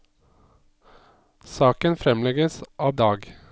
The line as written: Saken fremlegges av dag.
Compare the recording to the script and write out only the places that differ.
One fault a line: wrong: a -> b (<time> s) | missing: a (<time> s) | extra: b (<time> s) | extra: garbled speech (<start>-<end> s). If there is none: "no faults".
no faults